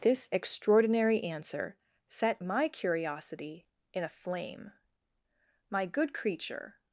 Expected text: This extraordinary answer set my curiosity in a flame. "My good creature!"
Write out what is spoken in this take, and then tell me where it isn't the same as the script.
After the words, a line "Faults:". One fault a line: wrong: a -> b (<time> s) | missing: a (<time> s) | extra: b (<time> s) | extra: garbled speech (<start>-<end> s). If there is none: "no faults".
This extraordinary answer set my curiosity in a flame. "My good creature!"
Faults:
no faults